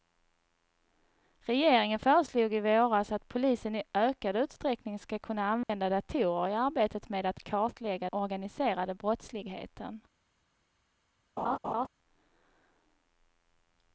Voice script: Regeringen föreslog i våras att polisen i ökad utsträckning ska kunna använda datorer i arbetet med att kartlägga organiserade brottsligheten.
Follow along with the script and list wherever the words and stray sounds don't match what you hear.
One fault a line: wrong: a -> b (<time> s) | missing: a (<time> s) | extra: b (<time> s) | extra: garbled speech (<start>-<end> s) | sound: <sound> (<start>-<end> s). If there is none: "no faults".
sound: dropout (5.6-5.7 s)
sound: laugh (11.4-11.9 s)